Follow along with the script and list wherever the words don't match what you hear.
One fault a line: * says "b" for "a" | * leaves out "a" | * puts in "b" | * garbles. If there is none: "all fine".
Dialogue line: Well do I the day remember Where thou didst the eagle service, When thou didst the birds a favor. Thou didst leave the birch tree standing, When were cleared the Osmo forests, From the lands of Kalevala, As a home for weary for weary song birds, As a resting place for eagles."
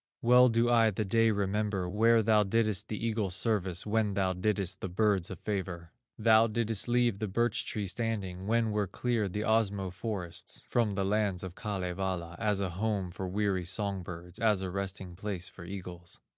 * leaves out "for weary"